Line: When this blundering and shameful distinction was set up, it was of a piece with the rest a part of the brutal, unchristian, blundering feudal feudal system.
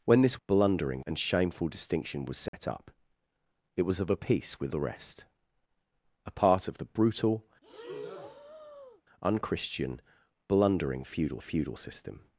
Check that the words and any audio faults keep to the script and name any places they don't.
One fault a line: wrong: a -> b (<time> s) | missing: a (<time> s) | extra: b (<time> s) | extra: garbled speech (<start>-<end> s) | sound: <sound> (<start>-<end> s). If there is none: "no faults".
sound: dropout (2.5-2.5 s)
sound: breath (7.6-9.0 s)